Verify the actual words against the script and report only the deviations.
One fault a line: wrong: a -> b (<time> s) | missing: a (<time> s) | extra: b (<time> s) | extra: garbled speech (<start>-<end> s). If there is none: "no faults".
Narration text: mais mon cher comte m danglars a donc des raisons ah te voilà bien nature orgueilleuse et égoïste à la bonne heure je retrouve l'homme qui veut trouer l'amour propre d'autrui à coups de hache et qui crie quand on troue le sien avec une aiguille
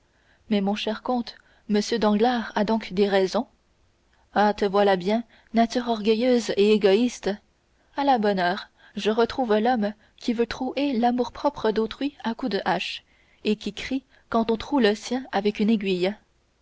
no faults